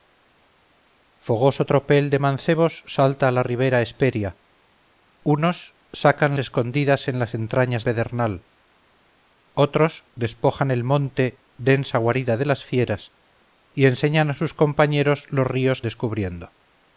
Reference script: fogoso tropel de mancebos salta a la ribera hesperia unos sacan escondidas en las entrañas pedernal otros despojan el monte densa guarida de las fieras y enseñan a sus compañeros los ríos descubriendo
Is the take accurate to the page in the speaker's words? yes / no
yes